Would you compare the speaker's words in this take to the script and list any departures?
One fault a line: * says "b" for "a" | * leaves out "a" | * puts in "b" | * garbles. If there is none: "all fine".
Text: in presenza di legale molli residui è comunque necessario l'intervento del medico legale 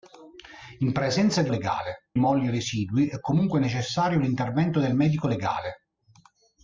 all fine